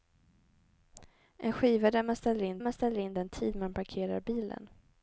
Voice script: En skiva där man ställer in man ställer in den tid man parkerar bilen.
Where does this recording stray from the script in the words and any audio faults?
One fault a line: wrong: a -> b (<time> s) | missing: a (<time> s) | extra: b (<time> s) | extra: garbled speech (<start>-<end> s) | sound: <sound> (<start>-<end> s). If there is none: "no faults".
no faults